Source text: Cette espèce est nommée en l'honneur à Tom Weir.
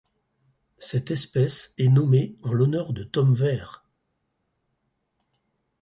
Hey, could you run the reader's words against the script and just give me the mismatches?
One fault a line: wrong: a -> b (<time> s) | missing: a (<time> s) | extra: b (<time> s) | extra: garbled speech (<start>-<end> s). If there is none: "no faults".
wrong: à -> de (2.9 s)